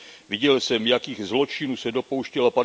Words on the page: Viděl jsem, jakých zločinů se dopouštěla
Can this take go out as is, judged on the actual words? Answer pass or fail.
pass